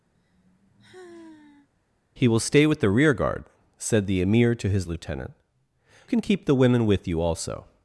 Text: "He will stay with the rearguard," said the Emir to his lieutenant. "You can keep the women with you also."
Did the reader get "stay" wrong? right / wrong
right